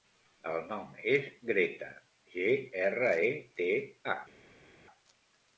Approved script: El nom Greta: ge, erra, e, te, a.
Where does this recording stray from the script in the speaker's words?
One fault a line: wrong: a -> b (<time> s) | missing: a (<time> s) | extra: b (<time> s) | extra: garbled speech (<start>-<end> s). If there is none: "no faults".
extra: és (1.2 s)